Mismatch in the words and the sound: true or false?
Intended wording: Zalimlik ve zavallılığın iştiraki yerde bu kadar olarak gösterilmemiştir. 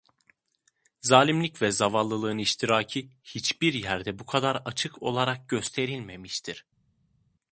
true